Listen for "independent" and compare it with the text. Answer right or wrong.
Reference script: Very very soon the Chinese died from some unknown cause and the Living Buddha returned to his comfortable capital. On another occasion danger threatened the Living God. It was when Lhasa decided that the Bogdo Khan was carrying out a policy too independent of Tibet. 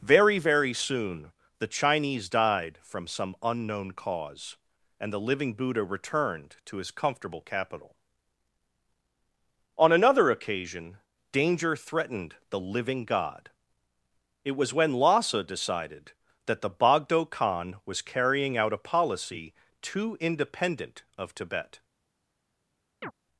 right